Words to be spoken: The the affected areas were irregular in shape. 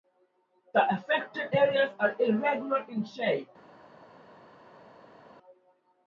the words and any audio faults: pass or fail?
fail